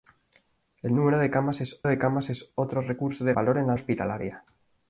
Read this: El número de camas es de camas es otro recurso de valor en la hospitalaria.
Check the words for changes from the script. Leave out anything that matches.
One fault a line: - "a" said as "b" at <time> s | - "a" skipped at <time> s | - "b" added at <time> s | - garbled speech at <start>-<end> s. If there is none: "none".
none